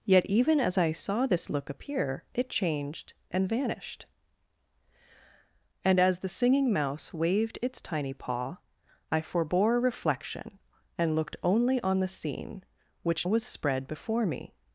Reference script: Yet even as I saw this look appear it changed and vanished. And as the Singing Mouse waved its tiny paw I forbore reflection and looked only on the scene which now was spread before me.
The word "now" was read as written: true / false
false